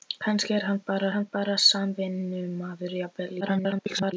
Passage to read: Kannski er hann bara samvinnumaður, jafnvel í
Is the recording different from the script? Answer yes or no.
yes